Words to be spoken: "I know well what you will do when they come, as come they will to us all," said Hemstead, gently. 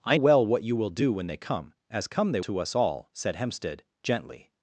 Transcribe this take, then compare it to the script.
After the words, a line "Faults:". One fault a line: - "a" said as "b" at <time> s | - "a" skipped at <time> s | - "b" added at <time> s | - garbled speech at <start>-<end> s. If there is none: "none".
"I well what you will do when they come, as come they to us all," said Hemstead, gently.
Faults:
- "know" skipped at 0.2 s
- "will" skipped at 2.4 s